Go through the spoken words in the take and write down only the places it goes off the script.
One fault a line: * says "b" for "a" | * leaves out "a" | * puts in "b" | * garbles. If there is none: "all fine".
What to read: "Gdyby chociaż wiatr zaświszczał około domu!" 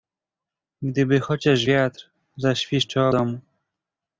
* leaves out "około"